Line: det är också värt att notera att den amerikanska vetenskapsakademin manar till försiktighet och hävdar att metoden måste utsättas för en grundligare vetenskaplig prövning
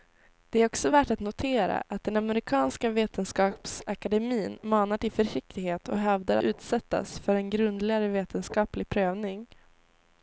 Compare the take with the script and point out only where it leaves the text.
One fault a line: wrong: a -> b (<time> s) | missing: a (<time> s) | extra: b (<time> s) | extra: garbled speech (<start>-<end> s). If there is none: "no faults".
missing: att metoden måste (6.4 s)